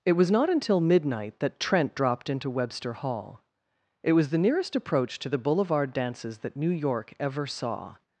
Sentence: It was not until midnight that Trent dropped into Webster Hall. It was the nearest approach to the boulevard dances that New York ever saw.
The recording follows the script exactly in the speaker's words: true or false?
true